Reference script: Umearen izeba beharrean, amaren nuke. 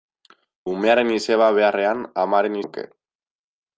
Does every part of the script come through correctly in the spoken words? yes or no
yes